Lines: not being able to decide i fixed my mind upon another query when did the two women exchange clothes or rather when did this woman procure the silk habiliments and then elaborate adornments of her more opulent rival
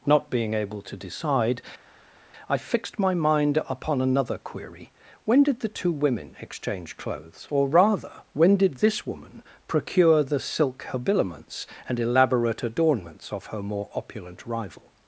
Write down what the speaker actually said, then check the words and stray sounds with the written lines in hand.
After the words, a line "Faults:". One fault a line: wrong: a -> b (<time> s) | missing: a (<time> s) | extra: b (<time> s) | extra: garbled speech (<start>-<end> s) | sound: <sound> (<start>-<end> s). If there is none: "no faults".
not being able to decide i fixed my mind upon another query when did the two women exchange clothes or rather when did this woman procure the silk habiliments and elaborate adornments of her more opulent rival
Faults:
missing: then (12.0 s)